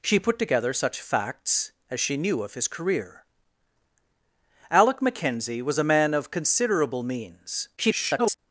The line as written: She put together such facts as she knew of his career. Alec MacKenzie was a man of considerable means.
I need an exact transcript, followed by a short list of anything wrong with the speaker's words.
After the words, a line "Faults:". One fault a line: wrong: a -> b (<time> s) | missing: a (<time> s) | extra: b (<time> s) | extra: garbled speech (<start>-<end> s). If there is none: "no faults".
She put together such facts as she knew of his career. Alec MacKenzie was a man of considerable means. [garbled]
Faults:
extra: garbled speech (7.8-8.4 s)